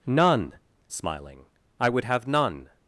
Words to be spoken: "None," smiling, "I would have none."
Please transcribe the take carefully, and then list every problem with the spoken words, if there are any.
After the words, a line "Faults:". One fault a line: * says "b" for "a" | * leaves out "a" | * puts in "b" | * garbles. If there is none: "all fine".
"None," smiling, "I would have none."
Faults:
all fine